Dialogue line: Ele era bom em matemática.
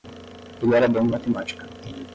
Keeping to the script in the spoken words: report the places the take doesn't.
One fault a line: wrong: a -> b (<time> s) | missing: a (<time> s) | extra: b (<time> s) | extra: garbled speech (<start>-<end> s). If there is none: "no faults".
no faults